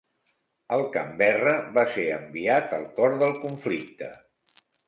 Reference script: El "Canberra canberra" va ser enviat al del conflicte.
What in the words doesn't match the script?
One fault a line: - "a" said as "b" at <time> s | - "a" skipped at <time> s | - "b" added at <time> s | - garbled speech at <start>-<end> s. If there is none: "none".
- "canberra" skipped at 1.6 s
- "cor" added at 3.0 s